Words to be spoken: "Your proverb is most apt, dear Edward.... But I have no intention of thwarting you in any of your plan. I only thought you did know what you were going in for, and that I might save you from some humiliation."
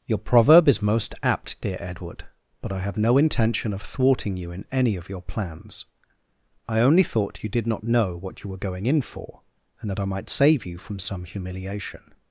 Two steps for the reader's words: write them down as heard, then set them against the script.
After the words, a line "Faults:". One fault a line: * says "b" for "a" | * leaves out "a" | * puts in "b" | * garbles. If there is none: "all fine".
"Your proverb is most apt, dear Edward.... But I have no intention of thwarting you in any of your plans. I only thought you did not know what you were going in for, and that I might save you from some humiliation."
Faults:
* says "plans" for "plan"
* puts in "not"